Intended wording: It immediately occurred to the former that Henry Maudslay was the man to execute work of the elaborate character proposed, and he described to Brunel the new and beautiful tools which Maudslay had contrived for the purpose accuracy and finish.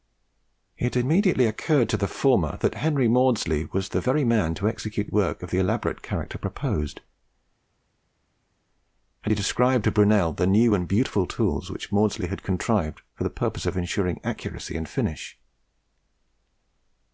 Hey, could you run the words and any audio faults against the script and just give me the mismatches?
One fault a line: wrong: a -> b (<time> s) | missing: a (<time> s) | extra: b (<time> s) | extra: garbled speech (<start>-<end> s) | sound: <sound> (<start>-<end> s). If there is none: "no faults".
extra: very (4.0 s)
extra: of ensuring (13.6 s)